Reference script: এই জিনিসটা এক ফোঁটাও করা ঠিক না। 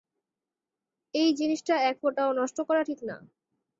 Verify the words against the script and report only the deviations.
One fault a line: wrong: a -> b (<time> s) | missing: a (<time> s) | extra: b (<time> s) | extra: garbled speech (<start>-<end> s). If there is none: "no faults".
extra: নষ্ট (2.3 s)